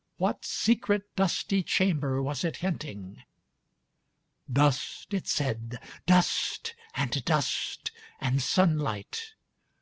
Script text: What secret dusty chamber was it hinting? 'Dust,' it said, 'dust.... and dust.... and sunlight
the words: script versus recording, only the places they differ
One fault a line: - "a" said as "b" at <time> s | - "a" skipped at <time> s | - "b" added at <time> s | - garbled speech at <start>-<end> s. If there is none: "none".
none